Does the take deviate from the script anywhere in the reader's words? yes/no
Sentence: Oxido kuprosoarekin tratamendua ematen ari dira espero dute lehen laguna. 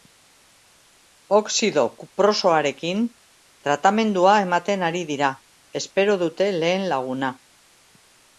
no